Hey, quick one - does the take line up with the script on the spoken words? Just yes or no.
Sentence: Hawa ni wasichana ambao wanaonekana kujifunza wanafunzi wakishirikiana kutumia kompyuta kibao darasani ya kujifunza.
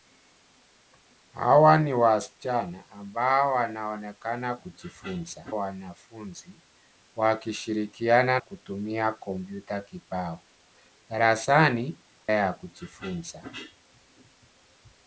yes